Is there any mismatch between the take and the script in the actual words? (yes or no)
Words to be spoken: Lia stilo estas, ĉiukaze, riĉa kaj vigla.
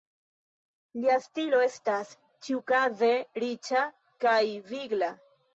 no